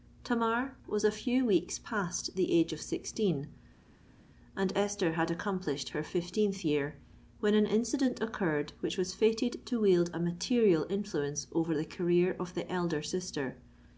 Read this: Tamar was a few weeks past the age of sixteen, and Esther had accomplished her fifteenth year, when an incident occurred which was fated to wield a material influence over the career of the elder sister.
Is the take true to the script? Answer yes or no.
yes